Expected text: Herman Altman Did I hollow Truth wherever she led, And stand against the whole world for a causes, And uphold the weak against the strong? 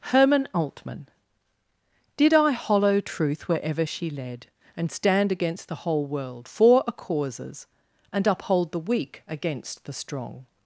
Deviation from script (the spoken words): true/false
false